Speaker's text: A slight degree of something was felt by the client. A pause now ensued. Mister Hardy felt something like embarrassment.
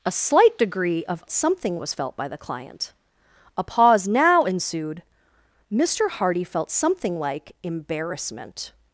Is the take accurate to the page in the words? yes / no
yes